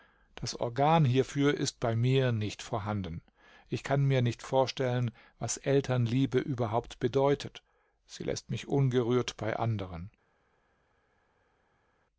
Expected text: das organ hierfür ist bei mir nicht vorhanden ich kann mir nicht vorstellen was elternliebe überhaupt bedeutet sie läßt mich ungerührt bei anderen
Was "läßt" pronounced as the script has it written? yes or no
yes